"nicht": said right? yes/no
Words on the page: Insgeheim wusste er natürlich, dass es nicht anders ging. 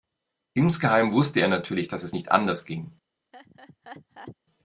yes